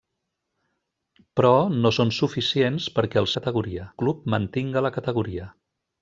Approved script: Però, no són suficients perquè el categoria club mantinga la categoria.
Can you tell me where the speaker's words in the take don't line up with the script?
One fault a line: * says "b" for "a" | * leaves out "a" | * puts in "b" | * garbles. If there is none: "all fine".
all fine